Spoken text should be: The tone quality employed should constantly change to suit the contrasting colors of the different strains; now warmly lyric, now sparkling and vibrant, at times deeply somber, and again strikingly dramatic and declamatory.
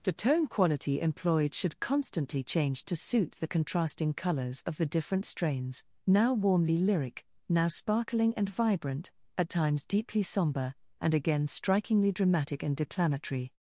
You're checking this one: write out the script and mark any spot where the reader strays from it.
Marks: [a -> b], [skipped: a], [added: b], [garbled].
The tone quality employed should constantly change to suit the contrasting colors of the different strains; now warmly lyric, now sparkling and vibrant, at times deeply somber, and again strikingly dramatic and declamatory.